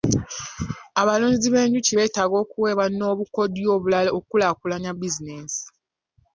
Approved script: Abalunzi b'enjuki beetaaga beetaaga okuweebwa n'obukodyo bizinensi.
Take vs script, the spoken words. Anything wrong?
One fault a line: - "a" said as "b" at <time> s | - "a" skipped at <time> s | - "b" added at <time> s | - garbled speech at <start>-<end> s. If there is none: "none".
- "beetaaga" skipped at 2.3 s
- "obulala okukulaakulanya" added at 3.8 s